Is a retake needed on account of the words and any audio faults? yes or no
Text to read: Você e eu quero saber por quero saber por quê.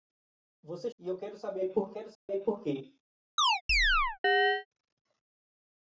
yes